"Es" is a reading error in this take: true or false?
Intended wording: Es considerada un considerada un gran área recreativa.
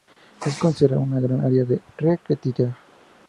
false